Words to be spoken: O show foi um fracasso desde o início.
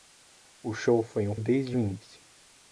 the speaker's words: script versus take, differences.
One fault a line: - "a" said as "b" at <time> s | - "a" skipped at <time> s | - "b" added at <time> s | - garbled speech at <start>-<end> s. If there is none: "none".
- "fracasso" skipped at 1.4 s